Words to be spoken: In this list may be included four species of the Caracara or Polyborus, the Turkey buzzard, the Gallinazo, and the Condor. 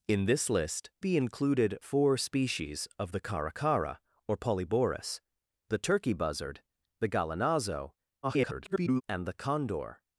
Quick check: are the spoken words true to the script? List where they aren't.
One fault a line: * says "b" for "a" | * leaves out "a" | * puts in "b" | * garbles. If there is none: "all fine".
* leaves out "may"
* garbles